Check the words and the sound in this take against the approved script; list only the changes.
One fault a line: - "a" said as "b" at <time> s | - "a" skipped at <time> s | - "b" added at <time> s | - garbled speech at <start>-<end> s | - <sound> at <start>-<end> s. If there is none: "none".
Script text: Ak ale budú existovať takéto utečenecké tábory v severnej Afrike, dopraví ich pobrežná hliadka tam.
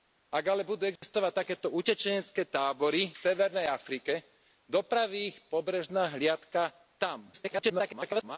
- dropout at 1.0-1.0 s
- "v" skipped at 3.1 s
- garbled speech at 7.3-8.4 s